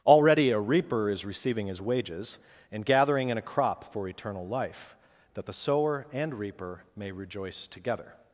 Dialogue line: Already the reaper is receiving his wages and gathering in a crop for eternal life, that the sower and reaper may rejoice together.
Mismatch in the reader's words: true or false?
true